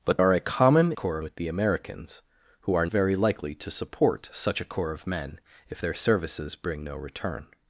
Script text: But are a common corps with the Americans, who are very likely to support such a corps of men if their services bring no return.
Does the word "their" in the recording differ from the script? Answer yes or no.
no